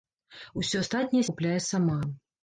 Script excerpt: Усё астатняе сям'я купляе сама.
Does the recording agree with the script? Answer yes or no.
no